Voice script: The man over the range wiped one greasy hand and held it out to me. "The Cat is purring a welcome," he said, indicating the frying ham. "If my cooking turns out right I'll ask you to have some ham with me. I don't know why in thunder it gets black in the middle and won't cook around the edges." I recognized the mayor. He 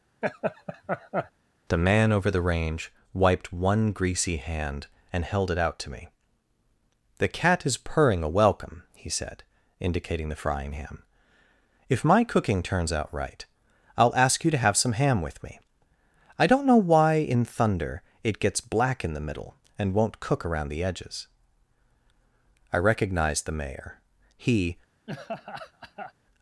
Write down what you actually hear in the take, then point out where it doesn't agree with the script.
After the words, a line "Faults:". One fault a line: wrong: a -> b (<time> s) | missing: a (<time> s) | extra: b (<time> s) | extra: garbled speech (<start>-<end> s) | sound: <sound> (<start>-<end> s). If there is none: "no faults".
The man over the range wiped one greasy hand and held it out to me. "The Cat is purring a welcome," he said, indicating the frying ham. "If my cooking turns out right I'll ask you to have some ham with me. I don't know why in thunder it gets black in the middle and won't cook around the edges." I recognized the mayor. He
Faults:
sound: laugh (0.2-1.3 s)
sound: laugh (25.1-26.1 s)